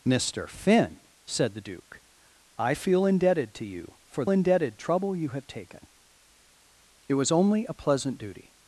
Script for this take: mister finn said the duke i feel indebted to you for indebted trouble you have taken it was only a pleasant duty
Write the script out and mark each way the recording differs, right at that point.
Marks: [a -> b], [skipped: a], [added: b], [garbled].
mister finn said the duke i feel indebted to you for indebted trouble you have taken it was only a pleasant duty